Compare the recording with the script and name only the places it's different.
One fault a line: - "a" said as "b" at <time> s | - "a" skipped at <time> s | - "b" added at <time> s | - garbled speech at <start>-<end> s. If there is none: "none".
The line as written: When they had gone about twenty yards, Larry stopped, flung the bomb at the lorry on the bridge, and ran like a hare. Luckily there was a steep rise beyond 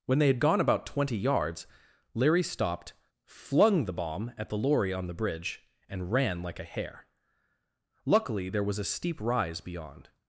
none